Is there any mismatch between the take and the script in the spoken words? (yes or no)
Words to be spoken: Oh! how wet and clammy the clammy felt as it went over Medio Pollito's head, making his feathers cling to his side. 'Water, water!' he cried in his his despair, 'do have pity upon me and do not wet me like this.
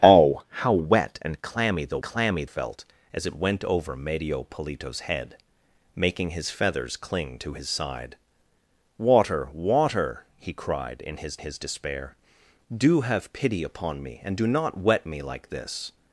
no